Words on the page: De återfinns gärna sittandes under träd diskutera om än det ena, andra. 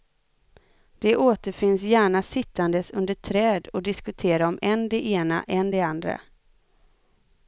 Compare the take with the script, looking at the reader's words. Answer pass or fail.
fail